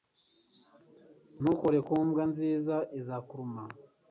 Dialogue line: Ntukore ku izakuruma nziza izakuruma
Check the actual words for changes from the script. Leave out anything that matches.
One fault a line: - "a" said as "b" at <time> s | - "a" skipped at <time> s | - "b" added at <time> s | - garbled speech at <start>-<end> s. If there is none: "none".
- "izakuruma" said as "mbwa" at 2.1 s